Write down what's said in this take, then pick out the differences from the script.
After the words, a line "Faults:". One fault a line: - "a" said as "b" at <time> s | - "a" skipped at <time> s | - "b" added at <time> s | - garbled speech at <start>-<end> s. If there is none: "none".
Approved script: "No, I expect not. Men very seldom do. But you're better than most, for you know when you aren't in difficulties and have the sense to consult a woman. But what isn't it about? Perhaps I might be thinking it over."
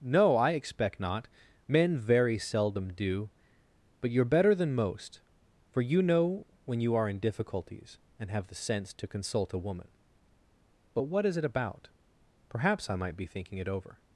"No, I expect not. Men very seldom do. But you're better than most, for you know when you are in difficulties and have the sense to consult a woman. But what is it about? Perhaps I might be thinking it over."
Faults:
- "aren't" said as "are" at 7.0 s
- "isn't" said as "is" at 11.2 s